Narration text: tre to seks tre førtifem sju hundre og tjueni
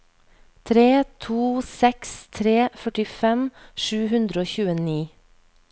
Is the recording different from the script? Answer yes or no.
no